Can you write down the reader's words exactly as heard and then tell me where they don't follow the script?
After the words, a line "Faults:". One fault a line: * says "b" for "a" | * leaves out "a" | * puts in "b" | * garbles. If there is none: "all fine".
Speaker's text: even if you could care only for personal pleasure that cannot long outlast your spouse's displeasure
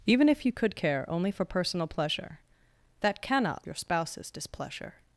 even if you could care only for personal pleasure that cannot your spouse's displeasure
Faults:
* leaves out "long outlast"